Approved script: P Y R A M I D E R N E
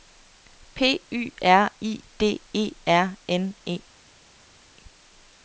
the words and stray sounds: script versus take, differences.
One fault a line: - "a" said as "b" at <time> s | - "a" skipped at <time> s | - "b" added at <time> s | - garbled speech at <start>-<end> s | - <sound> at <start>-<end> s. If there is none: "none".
- "A M" skipped at 1.7 s